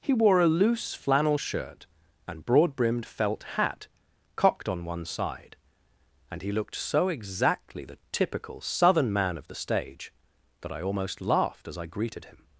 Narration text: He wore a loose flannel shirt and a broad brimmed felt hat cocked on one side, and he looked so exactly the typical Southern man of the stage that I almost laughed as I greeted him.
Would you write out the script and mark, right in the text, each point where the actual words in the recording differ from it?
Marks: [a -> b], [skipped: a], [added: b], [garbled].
He wore a loose flannel shirt and [skipped: a] broad brimmed felt hat cocked on one side, and he looked so exactly the typical Southern man of the stage that I almost laughed as I greeted him.